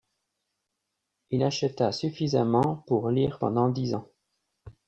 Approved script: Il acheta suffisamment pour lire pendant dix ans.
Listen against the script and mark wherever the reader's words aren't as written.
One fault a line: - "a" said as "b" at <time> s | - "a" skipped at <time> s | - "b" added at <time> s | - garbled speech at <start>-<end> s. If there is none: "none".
none